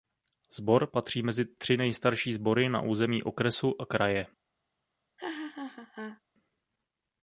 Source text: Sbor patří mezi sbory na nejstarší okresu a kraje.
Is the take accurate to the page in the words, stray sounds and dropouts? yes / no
no